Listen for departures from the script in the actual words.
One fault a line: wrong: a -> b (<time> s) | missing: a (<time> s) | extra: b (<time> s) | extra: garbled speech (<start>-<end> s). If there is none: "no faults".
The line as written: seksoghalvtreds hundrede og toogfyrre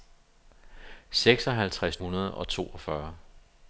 no faults